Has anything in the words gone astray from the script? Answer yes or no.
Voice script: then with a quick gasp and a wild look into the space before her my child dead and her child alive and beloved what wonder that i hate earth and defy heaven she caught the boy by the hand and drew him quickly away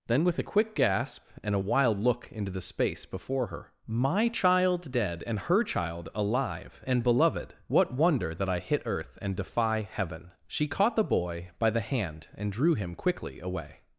yes